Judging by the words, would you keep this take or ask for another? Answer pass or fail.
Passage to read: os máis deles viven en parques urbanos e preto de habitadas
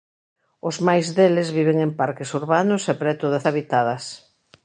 pass